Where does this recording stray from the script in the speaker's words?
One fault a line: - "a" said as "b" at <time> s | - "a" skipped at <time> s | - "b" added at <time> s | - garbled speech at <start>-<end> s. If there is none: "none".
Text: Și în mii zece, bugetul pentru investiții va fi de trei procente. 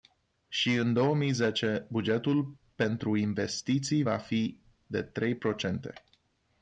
- "două" added at 0.9 s